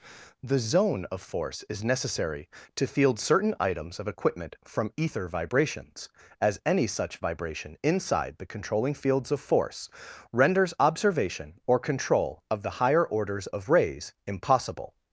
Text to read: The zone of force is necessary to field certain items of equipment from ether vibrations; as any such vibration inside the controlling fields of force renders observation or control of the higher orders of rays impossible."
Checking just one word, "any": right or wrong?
right